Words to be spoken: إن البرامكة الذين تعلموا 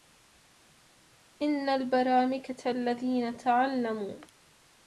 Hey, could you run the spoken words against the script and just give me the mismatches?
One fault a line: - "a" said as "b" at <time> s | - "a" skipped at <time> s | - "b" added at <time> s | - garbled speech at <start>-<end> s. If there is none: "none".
none